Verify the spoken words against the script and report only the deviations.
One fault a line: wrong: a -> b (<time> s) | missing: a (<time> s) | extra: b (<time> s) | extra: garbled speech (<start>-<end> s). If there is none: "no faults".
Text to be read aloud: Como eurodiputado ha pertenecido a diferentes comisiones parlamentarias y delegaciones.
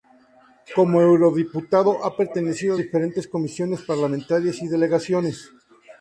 no faults